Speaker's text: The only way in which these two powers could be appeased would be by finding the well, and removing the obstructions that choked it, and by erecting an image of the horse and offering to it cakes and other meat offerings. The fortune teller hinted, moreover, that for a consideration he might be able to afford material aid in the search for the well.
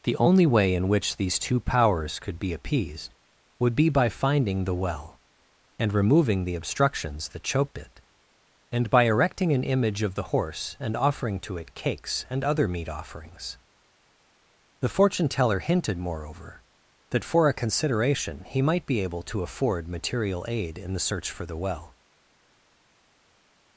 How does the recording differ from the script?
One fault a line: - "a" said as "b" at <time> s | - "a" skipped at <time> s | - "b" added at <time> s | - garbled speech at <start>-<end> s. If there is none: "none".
none